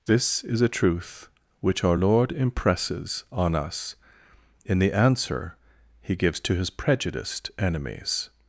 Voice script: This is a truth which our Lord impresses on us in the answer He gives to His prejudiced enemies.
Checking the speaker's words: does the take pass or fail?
pass